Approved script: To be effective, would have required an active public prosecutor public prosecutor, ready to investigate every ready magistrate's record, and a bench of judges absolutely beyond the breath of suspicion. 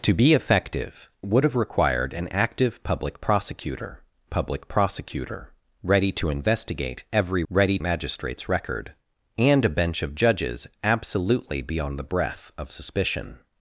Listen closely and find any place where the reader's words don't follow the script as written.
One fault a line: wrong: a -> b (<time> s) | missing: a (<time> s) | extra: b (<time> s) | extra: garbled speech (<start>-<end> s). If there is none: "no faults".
no faults